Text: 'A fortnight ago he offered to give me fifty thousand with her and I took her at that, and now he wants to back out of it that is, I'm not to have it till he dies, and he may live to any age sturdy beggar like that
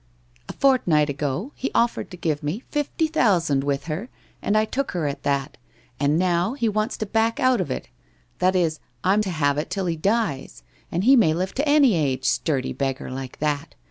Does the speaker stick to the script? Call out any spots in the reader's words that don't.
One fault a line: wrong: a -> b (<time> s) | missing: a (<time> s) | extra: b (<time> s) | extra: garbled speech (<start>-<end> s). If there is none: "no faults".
missing: not (9.2 s)